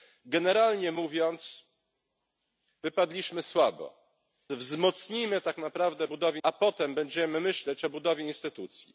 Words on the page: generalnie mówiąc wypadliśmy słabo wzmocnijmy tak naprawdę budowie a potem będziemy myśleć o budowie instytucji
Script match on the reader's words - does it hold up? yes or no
yes